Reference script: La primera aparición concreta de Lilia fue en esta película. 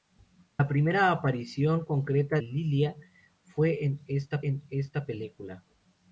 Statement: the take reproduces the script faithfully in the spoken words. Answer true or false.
false